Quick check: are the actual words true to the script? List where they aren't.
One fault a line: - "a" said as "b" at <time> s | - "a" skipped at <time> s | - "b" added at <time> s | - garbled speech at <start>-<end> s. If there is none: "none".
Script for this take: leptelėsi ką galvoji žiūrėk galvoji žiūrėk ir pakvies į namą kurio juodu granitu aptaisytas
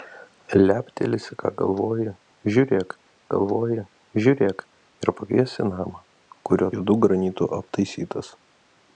none